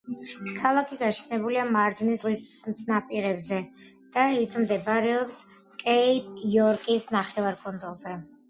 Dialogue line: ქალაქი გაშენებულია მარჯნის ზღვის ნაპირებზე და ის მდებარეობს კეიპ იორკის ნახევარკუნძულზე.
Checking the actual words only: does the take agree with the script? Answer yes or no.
yes